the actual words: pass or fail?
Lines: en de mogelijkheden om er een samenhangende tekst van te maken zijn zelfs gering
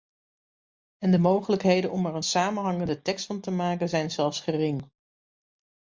pass